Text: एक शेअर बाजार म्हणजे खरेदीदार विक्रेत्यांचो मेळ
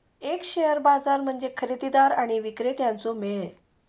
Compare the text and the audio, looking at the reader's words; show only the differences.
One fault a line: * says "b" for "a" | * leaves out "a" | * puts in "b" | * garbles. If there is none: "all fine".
* puts in "आणि"